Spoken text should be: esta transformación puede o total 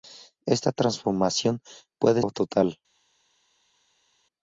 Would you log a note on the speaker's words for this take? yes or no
no